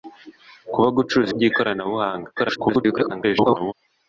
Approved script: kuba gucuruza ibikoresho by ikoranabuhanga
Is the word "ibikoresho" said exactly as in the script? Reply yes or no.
no